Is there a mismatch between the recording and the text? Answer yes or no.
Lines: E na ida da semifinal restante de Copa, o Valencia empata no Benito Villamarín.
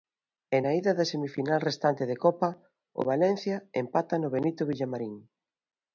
no